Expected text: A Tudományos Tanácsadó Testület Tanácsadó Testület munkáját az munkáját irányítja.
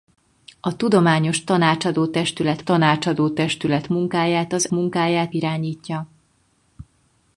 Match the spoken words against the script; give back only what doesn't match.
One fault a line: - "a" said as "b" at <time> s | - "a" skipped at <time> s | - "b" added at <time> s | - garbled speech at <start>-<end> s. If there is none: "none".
none